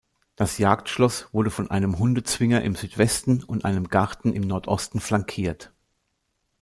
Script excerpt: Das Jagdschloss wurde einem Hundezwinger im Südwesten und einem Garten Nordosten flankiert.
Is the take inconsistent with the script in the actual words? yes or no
yes